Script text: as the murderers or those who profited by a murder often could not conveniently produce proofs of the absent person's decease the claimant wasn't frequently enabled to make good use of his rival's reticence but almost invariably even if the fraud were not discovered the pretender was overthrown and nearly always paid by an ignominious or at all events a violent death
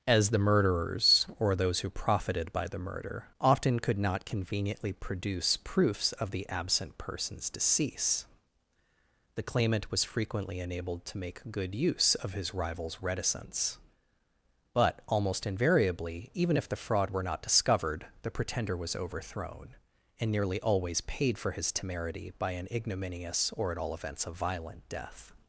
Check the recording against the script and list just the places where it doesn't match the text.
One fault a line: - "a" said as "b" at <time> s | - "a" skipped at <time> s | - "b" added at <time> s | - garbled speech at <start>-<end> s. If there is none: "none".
- "a" said as "the" at 2.6 s
- "wasn't" said as "was" at 9.9 s
- "for his temerity" added at 21.4 s